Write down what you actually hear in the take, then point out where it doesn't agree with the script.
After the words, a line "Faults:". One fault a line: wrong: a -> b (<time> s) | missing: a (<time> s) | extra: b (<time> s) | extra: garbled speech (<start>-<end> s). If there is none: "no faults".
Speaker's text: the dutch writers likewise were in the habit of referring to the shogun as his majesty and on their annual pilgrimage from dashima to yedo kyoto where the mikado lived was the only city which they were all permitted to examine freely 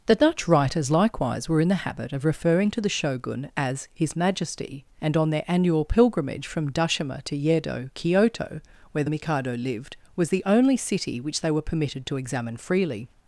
the dutch writers likewise were in the habit of referring to the shogun as his majesty and on their annual pilgrimage from dashima to yedo kyoto where the mikado lived was the only city which they were permitted to examine freely
Faults:
missing: all (11.6 s)